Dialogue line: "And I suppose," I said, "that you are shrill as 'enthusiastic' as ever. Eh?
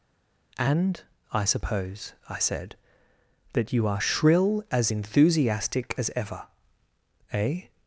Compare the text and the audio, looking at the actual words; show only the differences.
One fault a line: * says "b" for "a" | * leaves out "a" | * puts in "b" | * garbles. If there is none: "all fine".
all fine